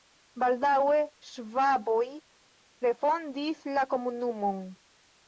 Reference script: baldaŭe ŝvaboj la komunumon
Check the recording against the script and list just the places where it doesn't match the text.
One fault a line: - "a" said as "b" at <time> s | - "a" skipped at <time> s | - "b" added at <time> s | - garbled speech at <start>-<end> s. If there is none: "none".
- "refondis" added at 2.9 s